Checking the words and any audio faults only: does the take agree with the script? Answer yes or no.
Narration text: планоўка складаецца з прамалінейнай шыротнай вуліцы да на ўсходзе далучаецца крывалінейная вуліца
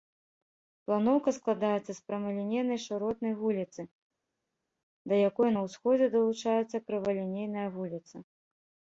no